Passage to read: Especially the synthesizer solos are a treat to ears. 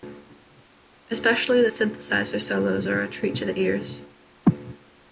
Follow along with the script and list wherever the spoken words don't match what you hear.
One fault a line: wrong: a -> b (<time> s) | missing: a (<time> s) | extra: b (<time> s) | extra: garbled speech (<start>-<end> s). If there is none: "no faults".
extra: the (3.4 s)